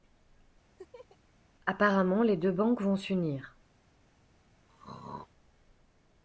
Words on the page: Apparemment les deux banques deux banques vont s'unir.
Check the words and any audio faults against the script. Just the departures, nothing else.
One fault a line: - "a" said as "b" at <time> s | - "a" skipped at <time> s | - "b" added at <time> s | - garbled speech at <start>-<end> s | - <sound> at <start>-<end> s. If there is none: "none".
- laugh at 0.8-1.2 s
- "deux banques" skipped at 2.8 s
- throat clearing at 4.7-5.3 s